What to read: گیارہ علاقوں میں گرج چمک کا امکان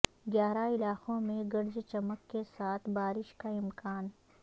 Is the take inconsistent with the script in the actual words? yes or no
yes